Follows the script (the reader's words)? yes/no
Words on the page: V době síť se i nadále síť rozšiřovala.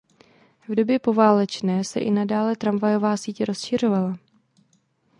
no